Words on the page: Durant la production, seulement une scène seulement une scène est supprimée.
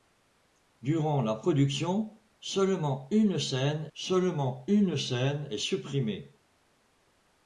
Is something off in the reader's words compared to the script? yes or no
no